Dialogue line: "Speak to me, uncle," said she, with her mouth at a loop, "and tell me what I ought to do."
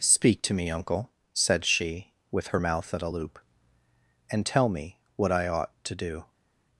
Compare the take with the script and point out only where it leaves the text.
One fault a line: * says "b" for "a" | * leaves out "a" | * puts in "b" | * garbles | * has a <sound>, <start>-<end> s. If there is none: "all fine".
all fine